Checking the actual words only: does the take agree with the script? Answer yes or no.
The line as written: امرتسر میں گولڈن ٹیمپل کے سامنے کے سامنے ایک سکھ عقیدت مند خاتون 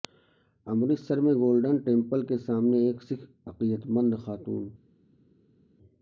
no